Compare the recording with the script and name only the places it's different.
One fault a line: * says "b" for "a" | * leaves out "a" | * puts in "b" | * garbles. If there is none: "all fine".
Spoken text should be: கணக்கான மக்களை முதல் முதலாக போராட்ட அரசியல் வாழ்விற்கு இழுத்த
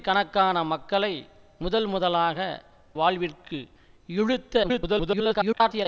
* leaves out "போராட்ட அரசியல்"
* garbles